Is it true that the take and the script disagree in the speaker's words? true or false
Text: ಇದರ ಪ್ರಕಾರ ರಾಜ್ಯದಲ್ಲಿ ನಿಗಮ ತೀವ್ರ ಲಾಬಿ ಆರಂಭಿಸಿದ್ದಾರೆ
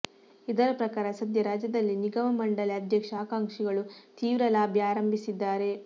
true